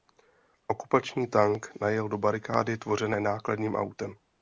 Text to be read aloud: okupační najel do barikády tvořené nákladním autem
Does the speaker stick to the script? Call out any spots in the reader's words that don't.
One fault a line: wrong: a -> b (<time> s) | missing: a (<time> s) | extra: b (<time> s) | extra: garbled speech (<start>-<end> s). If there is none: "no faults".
extra: tank (1.3 s)